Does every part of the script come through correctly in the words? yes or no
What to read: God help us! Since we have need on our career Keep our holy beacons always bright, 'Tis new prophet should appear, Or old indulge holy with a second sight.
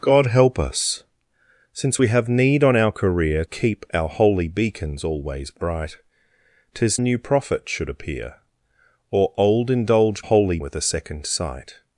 yes